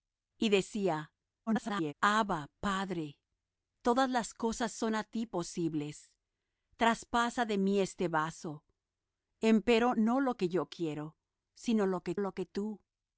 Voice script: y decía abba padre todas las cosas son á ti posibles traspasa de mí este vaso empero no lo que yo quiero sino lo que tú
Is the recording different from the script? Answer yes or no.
yes